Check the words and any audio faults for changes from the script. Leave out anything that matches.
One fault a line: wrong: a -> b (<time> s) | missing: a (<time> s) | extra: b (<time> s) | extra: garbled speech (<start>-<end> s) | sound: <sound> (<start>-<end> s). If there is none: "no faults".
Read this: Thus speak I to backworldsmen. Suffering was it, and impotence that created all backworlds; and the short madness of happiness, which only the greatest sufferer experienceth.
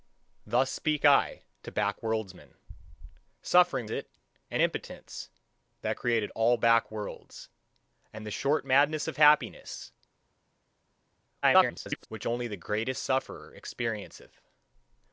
missing: was (3.9 s)
extra: garbled speech (11.4-12.1 s)